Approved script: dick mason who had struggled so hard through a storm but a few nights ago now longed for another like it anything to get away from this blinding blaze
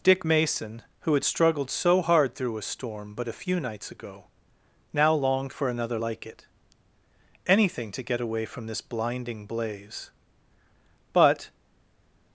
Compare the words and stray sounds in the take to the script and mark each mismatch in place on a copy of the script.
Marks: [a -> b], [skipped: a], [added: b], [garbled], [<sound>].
dick mason who had struggled so hard through a storm but a few nights ago now longed for another like it anything to get away from this blinding blaze [added: but]